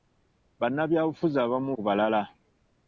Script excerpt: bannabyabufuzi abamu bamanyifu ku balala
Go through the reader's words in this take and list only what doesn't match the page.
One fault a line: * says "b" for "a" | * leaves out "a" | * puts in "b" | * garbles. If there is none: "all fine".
* leaves out "bamanyifu"